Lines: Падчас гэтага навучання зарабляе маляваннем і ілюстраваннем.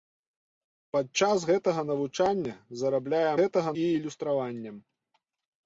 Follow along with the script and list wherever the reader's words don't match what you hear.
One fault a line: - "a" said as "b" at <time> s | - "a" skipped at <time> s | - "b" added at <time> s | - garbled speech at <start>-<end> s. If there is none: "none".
- "маляваннем" said as "гэтага" at 3.4 s